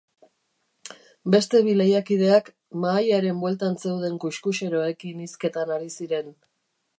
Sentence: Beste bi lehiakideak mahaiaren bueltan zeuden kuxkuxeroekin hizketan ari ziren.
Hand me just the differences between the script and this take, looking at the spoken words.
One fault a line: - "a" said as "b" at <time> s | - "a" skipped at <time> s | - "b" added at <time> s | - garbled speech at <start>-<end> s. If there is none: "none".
none